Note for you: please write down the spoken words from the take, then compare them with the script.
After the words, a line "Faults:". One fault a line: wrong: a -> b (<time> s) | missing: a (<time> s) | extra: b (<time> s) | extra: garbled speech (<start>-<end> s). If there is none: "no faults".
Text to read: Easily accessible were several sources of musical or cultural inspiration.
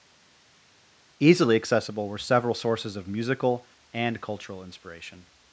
Easily accessible were several sources of musical and cultural inspiration.
Faults:
wrong: or -> and (3.9 s)